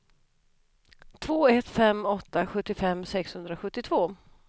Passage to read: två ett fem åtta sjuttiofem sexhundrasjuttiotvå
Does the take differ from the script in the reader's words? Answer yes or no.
no